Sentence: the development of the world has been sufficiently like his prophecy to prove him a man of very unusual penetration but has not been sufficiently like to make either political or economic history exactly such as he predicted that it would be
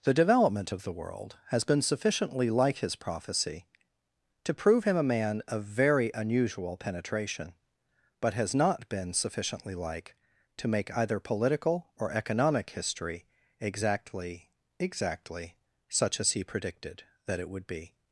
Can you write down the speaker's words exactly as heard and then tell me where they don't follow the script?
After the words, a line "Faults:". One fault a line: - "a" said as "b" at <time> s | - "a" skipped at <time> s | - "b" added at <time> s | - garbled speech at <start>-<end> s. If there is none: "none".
the development of the world has been sufficiently like his prophecy to prove him a man of very unusual penetration but has not been sufficiently like to make either political or economic history exactly exactly such as he predicted that it would be
Faults:
- "exactly" added at 14.8 s